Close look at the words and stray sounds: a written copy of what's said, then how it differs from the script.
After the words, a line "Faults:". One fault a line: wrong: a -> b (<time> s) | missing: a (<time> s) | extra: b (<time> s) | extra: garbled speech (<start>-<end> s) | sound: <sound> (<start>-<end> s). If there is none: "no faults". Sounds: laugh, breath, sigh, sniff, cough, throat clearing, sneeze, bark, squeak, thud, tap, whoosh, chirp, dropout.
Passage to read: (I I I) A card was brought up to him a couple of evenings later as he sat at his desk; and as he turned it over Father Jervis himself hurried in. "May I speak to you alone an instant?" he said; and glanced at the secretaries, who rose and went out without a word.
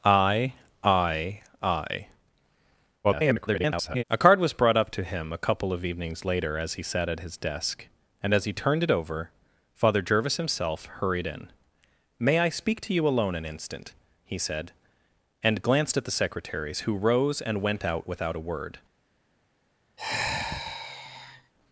(I I I) [garbled] A card was brought up to him a couple of evenings later as he sat at his desk; and as he turned it over Father Jervis himself hurried in. "May I speak to you alone an instant?" he said; and glanced at the secretaries, who rose and went out without a word.
Faults:
extra: garbled speech (3.0-4.0 s)
sound: sigh (20.0-21.5 s)